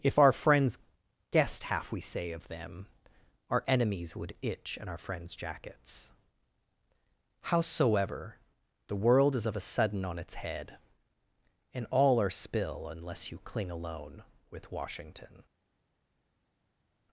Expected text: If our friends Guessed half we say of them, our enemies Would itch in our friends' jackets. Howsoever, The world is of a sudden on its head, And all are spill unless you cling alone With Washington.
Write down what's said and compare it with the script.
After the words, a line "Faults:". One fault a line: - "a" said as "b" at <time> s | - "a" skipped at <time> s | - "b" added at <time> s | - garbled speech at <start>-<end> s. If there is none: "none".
If our friends Guessed half we say of them, our enemies Would itch in our friends' jackets. Howsoever, The world is of a sudden on its head, And all are spill unless you cling alone With Washington.
Faults:
none